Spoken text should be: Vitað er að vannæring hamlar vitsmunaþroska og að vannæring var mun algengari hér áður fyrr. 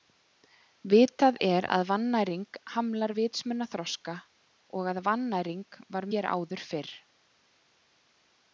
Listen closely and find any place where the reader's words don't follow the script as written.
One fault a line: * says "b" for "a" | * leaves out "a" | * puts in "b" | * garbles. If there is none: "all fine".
* leaves out "mun algengari"